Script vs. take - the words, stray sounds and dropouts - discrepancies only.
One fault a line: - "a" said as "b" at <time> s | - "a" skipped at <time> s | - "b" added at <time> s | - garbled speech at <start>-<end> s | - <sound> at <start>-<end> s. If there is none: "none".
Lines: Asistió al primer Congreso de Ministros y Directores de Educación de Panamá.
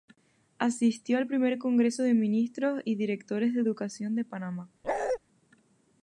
- bark at 4.8-5.2 s